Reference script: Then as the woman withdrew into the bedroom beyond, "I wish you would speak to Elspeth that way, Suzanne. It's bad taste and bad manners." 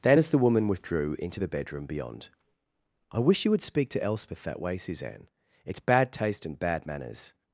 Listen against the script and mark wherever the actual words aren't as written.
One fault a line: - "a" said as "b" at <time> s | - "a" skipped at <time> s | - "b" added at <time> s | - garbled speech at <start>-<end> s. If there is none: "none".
none